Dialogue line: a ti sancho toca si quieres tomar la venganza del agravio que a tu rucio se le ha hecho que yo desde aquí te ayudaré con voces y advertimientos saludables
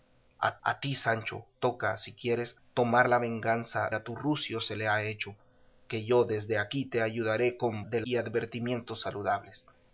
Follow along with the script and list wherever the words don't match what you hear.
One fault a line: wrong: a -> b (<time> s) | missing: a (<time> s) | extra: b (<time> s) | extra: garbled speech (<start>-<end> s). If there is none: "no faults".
extra: a (0.6 s)
missing: del agravio que (3.9 s)
wrong: voces -> del (7.8 s)